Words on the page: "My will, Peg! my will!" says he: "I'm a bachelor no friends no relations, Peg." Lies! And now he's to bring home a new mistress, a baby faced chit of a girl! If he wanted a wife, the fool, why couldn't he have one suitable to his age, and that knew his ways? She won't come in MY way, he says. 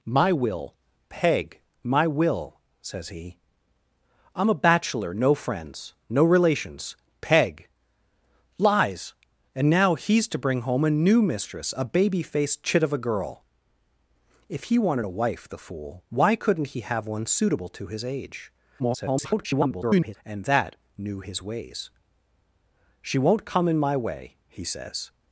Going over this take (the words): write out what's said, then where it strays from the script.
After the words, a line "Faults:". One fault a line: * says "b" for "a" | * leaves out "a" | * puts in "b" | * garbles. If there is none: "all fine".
"My will, Peg! my will!" says he: "I'm a bachelor no friends no relations, Peg." Lies! And now he's to bring home a new mistress, a baby faced chit of a girl! If he wanted a wife, the fool, why couldn't he have one suitable to his age, [garbled] and that knew his ways? She won't come in MY way, he says.
Faults:
* garbles